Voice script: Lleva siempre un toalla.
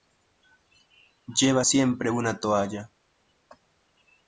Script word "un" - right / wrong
wrong